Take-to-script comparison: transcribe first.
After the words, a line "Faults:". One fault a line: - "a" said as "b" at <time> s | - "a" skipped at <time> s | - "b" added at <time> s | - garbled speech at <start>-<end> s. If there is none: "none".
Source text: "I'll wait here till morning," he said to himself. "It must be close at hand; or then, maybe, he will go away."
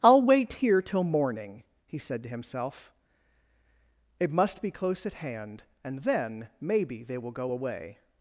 "I'll wait here till morning," he said to himself. "It must be close at hand; and then, maybe, they will go away."
Faults:
- "or" said as "and" at 5.8 s
- "he" said as "they" at 7.0 s